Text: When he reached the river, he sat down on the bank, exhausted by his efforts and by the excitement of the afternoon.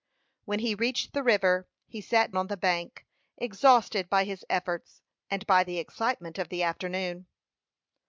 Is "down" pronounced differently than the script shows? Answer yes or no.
yes